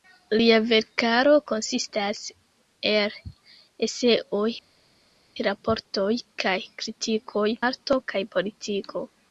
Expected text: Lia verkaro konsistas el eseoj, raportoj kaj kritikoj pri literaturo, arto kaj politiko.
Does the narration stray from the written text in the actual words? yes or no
yes